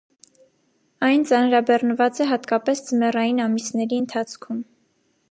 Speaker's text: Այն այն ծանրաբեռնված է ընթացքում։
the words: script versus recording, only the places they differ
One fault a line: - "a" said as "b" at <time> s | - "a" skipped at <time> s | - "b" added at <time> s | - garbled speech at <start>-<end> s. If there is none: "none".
- "այն" skipped at 1.2 s
- "հատկապես ձմեռային ամիսների" added at 2.3 s